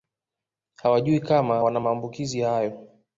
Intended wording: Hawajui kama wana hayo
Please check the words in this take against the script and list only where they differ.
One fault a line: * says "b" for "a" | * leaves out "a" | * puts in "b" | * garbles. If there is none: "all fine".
* puts in "maambukizi"